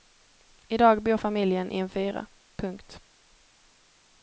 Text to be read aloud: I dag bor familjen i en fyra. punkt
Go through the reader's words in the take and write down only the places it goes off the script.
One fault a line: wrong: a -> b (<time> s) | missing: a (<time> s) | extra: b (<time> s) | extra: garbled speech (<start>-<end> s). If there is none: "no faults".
no faults